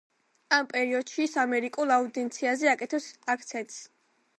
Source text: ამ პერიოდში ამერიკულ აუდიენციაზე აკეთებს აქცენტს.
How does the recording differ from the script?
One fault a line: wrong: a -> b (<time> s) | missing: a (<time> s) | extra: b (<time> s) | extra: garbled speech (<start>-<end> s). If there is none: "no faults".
extra: ის (1.3 s)